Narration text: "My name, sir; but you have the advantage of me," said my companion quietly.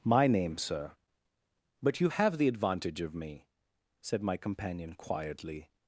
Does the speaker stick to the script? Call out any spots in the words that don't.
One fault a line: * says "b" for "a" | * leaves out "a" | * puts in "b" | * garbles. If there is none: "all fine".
all fine